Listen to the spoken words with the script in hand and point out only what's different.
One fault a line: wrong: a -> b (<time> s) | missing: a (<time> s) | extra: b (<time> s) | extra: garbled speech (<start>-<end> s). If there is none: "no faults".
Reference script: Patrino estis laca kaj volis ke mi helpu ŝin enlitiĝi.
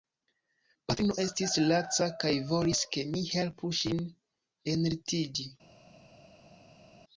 no faults